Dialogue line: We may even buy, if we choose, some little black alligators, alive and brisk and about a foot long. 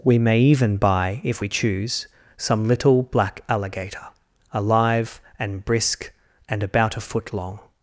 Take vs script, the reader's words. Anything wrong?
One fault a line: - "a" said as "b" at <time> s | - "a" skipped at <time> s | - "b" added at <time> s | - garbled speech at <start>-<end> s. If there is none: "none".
- "alligators" said as "alligator" at 3.5 s